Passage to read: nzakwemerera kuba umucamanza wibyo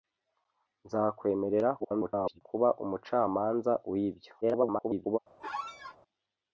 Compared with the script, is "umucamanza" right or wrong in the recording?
right